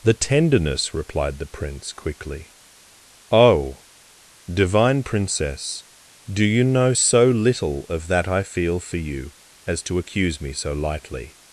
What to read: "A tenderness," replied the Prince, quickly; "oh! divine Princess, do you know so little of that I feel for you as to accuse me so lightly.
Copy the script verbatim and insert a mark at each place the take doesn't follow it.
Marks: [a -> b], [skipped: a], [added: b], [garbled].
["A -> The] tenderness," replied the Prince, quickly; "oh! divine Princess, do you know so little of that I feel for you as to accuse me so lightly.